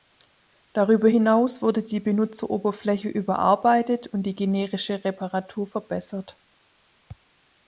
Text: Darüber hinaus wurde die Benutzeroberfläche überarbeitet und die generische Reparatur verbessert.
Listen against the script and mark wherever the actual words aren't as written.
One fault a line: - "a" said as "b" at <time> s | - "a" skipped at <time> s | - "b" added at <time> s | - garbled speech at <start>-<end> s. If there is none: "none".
none